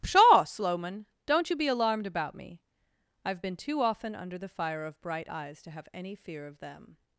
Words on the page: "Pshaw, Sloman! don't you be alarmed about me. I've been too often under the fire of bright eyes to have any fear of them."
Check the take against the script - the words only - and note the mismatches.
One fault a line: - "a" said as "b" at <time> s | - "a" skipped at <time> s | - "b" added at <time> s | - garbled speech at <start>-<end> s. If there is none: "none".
none